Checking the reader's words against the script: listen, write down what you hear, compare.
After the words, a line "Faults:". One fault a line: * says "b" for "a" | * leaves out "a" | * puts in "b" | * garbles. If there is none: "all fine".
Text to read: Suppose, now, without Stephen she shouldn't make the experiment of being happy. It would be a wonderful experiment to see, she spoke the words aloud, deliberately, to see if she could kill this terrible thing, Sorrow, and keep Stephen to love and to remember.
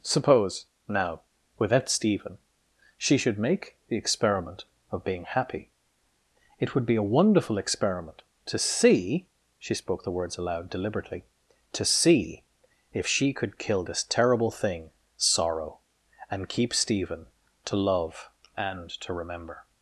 Suppose, now, without Stephen she should make the experiment of being happy. It would be a wonderful experiment to see, she spoke the words aloud, deliberately, to see if she could kill this terrible thing, Sorrow, and keep Stephen to love and to remember.
Faults:
* says "should" for "shouldn't"